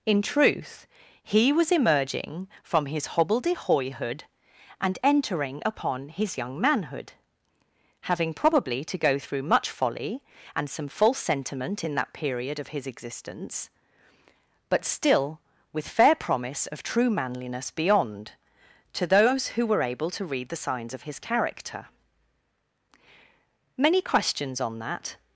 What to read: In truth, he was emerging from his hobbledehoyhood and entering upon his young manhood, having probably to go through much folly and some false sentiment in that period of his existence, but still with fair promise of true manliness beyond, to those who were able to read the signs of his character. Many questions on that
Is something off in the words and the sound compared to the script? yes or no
no